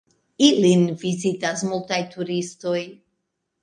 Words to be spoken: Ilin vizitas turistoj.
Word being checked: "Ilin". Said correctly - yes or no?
yes